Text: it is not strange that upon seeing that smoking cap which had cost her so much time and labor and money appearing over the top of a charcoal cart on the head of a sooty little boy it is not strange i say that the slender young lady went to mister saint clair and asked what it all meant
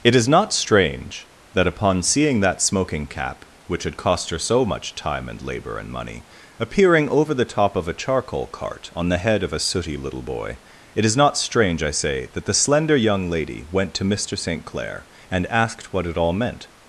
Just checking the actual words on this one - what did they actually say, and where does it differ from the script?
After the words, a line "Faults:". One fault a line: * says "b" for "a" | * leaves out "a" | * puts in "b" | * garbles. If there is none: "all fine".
it is not strange that upon seeing that smoking cap which had cost her so much time and labor and money appearing over the top of a charcoal cart on the head of a sooty little boy it is not strange i say that the slender young lady went to mister saint clair and asked what it all meant
Faults:
all fine